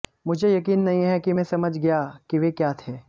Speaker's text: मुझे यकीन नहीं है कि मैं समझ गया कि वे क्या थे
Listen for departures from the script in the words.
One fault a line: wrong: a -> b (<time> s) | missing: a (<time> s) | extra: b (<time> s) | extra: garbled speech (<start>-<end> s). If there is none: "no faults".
no faults